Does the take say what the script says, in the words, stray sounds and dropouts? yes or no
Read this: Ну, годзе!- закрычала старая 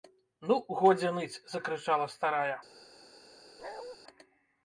no